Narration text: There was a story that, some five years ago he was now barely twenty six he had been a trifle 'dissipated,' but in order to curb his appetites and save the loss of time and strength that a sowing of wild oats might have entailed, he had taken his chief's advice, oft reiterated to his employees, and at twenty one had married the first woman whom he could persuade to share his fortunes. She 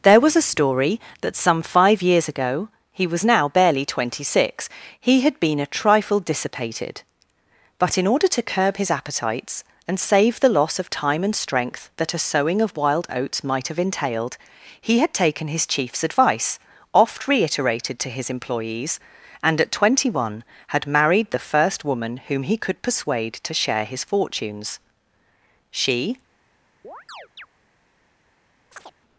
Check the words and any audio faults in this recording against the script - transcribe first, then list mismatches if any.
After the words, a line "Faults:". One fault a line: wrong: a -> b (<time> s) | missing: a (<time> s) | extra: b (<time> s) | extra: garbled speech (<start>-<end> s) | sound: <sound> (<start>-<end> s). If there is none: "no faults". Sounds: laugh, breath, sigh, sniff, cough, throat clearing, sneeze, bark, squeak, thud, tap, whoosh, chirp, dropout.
There was a story that, some five years ago he was now barely twenty six he had been a trifle 'dissipated,' but in order to curb his appetites and save the loss of time and strength that a sowing of wild oats might have entailed, he had taken his chief's advice, oft reiterated to his employees, and at twenty one had married the first woman whom he could persuade to share his fortunes. She
Faults:
sound: chirp (26.8-27.5 s)
sound: chirp (28.7-28.9 s)